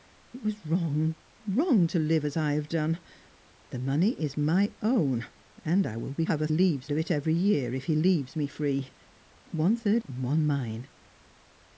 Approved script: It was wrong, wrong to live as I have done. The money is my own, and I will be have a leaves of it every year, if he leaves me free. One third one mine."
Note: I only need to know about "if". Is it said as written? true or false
true